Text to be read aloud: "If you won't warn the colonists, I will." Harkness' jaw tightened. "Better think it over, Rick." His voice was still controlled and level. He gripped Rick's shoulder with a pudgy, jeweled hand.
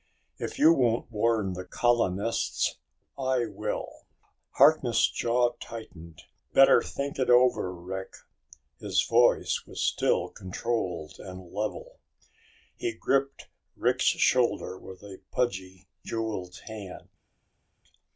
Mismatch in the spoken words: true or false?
false